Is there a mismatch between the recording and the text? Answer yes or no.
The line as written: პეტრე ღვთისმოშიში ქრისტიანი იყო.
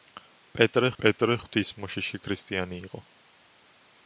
yes